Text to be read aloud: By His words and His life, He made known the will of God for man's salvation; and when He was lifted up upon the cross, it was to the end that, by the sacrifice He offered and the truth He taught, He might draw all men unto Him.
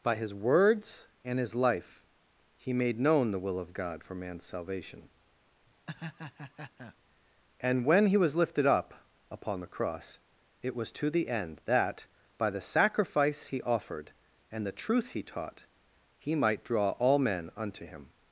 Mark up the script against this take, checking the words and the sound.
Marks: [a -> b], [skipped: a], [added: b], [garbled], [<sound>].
By His words and His life, He made known the will of God for man's salvation; [laugh] and when He was lifted up upon the cross, it was to the end that, by the sacrifice He offered and the truth He taught, He might draw all men unto Him.